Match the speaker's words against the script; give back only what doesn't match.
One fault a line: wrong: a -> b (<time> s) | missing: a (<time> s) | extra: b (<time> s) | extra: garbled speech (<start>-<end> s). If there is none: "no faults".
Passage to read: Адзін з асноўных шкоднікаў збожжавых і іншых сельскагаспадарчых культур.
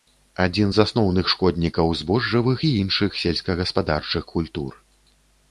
no faults